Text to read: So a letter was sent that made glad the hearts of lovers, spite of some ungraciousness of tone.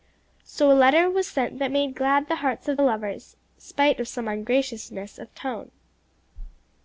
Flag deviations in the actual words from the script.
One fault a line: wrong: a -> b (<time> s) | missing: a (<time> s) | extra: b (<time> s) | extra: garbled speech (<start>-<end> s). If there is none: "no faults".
no faults